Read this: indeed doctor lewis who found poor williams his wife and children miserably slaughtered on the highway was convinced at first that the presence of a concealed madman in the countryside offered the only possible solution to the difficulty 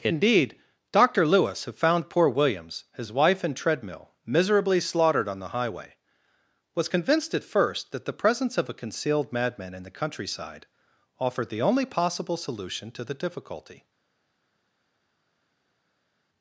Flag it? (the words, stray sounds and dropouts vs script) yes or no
yes